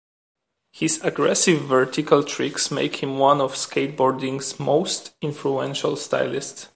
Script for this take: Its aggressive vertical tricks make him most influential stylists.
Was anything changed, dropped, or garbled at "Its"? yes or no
yes